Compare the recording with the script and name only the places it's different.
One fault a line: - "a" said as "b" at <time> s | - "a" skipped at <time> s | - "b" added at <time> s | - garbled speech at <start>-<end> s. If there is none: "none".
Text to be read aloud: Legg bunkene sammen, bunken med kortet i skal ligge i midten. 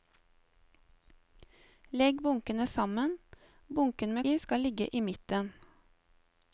- "kortet" skipped at 4.3 s